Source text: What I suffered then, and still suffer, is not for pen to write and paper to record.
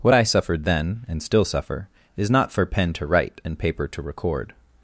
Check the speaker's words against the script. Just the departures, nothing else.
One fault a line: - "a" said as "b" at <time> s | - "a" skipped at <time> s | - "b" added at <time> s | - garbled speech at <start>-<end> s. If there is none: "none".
none